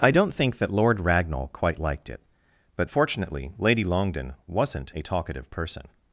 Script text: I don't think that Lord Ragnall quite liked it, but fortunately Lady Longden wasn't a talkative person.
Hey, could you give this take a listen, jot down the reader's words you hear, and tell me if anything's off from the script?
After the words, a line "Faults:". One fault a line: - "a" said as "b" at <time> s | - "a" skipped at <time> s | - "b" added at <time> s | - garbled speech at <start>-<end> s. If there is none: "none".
I don't think that Lord Ragnall quite liked it, but fortunately Lady Longden wasn't a talkative person.
Faults:
none